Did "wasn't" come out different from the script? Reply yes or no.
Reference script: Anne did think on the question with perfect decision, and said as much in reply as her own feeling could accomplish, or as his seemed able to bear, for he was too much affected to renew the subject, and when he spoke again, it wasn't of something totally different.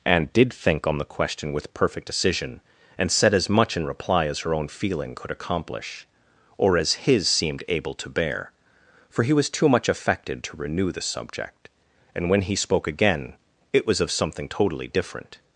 yes